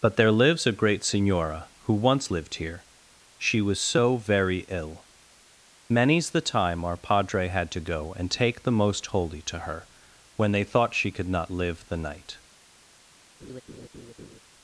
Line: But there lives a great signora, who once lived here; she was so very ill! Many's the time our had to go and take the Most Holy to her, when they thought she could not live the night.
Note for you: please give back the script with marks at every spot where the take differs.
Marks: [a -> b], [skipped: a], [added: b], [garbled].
But there lives a great signora, who once lived here; she was so very ill! Many's the time our [added: padre] had to go and take the Most Holy to her, when they thought she could not live the night.